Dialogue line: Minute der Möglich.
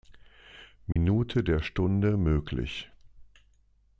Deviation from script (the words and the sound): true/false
true